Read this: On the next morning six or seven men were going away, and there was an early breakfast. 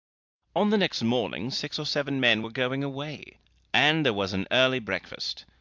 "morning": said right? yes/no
yes